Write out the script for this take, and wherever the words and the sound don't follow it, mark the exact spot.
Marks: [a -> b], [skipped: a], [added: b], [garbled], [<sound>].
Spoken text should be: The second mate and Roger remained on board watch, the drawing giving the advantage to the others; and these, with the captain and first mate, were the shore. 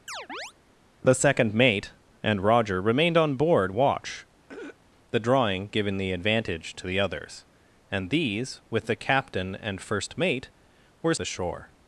[chirp] The second mate and Roger remained on board watch, [throat clearing] the drawing giving the advantage to the others; and these, with the captain and first mate, were the shore.